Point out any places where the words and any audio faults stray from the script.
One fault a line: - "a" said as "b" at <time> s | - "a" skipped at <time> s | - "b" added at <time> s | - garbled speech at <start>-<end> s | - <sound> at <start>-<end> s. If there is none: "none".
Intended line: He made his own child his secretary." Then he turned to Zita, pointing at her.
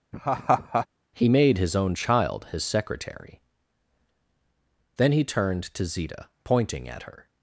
- laugh at 0.1-0.9 s